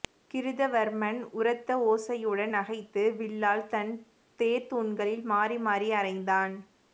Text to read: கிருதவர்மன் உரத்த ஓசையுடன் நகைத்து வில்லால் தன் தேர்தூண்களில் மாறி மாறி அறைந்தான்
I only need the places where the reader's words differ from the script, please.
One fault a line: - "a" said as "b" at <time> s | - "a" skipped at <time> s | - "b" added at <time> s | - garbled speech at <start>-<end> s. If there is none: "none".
none